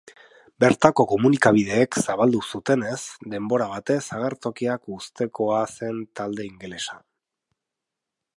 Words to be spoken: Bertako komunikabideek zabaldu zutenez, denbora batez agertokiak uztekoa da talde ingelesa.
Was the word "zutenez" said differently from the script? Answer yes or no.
no